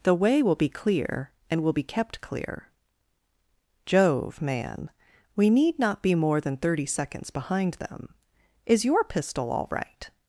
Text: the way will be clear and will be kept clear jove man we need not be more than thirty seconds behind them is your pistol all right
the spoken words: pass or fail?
pass